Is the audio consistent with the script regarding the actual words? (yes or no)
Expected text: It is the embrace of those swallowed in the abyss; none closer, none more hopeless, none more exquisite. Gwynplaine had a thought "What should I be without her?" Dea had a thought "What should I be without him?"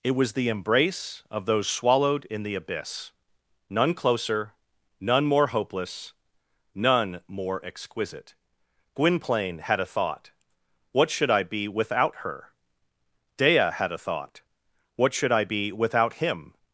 no